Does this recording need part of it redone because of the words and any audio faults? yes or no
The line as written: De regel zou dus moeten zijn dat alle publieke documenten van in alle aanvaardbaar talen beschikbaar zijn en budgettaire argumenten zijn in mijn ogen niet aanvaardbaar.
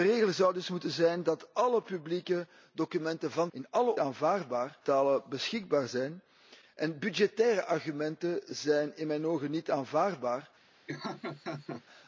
yes